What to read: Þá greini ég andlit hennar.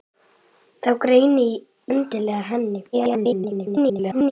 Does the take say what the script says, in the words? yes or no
no